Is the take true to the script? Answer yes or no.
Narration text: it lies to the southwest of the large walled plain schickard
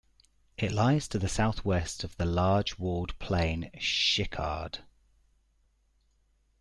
yes